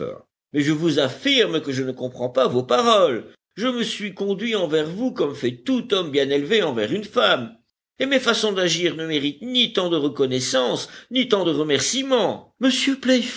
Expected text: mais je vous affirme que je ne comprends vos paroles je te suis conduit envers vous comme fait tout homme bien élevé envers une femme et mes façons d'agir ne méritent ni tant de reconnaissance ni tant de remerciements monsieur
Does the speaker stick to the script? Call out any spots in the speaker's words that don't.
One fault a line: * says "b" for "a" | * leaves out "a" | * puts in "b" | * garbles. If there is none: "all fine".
* puts in "pas"
* says "me" for "te"